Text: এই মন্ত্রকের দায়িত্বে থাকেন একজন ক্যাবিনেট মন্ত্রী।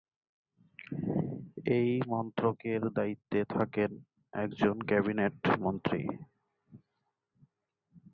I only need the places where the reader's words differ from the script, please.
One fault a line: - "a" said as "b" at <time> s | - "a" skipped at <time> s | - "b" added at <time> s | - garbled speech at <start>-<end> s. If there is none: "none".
none